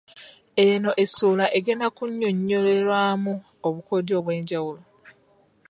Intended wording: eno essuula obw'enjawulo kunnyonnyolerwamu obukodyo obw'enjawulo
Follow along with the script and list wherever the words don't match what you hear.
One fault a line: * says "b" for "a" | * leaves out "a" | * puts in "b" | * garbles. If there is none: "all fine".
* says "egenda" for "obw'enjawulo"